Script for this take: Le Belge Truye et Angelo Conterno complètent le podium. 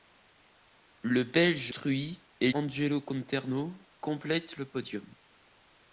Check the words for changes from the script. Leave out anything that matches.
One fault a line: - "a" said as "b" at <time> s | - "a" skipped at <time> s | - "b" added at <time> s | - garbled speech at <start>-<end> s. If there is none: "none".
none